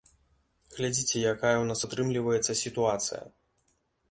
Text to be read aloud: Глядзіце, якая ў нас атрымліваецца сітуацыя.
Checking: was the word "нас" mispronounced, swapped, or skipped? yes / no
no